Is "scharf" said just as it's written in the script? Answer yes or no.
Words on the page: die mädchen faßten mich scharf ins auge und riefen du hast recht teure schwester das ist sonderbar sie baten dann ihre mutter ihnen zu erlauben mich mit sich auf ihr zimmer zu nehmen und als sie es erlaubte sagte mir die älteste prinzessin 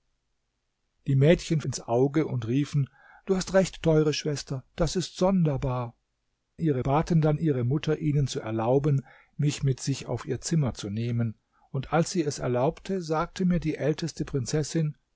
no